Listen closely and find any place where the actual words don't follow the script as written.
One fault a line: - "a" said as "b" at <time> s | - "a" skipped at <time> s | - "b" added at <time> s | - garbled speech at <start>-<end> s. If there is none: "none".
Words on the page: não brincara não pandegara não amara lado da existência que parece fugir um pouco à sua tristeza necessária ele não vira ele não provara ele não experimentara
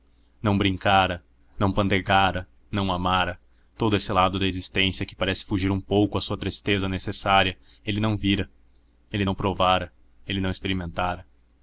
- "todo esse" added at 3.8 s